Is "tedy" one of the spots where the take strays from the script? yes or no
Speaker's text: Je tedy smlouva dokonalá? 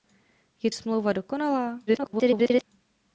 yes